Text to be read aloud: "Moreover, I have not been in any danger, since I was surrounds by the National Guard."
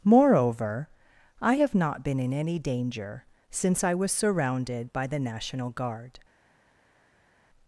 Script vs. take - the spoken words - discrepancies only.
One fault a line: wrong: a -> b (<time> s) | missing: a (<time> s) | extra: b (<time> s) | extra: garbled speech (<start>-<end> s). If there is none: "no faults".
wrong: surrounds -> surrounded (4.1 s)